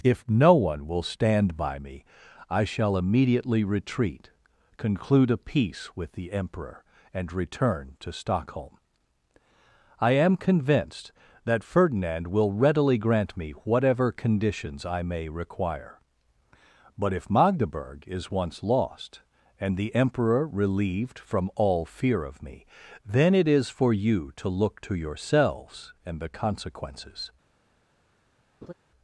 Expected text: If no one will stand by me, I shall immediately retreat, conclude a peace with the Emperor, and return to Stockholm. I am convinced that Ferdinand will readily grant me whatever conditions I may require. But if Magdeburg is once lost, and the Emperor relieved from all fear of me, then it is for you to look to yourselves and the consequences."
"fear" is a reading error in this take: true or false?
false